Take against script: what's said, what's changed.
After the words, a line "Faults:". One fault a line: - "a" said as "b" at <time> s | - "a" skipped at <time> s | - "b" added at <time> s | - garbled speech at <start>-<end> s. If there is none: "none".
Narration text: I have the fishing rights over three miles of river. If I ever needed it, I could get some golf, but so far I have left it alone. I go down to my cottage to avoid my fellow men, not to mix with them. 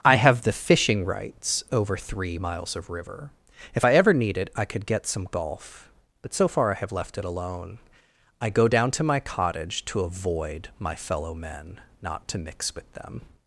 I have the fishing rights over three miles of river. If I ever need it, I could get some golf, but so far I have left it alone. I go down to my cottage to avoid my fellow men, not to mix with them.
Faults:
- "needed" said as "need" at 4.1 s